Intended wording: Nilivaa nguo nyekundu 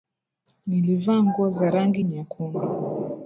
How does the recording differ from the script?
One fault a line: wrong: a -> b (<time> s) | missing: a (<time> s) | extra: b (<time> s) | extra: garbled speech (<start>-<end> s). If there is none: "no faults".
extra: za rangi (1.5 s)